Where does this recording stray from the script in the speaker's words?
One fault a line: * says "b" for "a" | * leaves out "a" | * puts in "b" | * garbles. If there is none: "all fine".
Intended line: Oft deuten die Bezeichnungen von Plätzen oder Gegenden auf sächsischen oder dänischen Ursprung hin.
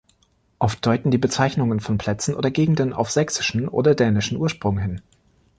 all fine